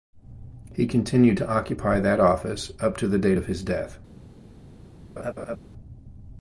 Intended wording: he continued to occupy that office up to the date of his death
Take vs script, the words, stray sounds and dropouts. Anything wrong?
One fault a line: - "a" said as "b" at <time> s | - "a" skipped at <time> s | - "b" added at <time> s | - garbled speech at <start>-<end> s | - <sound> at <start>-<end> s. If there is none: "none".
- laugh at 5.2-5.6 s